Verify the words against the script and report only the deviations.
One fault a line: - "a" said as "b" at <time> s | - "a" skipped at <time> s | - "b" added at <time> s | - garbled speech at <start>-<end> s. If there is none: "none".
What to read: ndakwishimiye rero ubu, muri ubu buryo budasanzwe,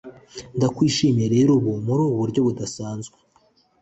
none